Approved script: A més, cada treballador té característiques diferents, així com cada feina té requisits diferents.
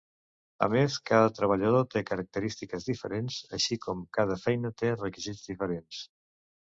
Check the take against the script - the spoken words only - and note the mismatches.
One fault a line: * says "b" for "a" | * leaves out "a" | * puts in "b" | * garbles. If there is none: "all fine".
all fine